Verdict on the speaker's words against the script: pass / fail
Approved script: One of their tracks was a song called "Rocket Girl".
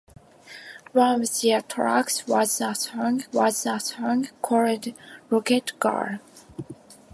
fail